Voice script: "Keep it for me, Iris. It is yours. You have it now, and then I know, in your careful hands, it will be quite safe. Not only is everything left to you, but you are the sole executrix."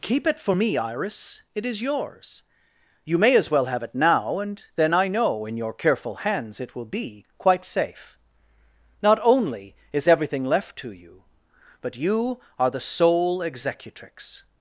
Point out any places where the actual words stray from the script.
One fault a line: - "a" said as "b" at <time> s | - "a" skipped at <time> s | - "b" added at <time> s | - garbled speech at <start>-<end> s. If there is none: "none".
- "may as well" added at 3.2 s